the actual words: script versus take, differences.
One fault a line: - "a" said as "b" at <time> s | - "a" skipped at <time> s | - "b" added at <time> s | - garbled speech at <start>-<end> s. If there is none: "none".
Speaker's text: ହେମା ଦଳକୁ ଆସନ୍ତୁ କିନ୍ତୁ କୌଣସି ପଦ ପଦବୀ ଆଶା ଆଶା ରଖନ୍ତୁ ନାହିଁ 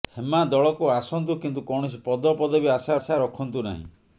none